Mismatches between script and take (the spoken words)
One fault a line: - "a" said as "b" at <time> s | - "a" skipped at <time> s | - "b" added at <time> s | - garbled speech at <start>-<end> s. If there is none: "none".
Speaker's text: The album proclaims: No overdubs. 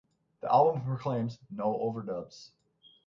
none